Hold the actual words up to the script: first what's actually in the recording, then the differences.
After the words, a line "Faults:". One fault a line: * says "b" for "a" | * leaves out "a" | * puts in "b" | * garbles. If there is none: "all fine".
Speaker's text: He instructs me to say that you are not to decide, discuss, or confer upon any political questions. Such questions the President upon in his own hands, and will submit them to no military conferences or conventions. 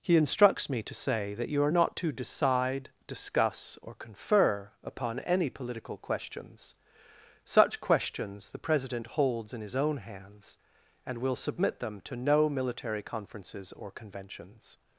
He instructs me to say that you are not to decide, discuss, or confer upon any political questions. Such questions the President holds in his own hands, and will submit them to no military conferences or conventions.
Faults:
* says "holds" for "upon"